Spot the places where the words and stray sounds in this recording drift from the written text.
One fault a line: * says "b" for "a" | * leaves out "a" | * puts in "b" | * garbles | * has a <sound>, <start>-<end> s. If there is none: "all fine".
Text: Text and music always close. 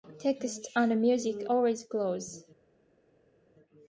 all fine